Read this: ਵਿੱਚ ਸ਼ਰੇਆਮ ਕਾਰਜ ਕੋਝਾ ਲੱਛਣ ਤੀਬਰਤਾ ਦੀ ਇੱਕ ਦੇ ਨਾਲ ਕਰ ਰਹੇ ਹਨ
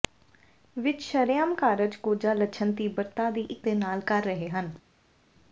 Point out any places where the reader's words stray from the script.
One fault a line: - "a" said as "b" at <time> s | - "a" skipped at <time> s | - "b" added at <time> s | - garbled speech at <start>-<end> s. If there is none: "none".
none